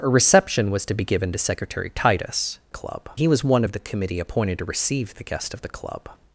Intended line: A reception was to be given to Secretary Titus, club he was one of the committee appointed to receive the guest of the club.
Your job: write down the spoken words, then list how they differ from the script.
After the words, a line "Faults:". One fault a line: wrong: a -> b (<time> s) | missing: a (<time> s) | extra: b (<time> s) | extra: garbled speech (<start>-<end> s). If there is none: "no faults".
A reception was to be given to Secretary Titus, club he was one of the committee appointed to receive the guest of the club.
Faults:
no faults